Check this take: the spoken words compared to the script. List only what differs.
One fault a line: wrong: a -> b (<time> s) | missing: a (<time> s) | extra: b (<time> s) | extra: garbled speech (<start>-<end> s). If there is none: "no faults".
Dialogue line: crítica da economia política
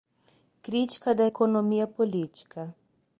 no faults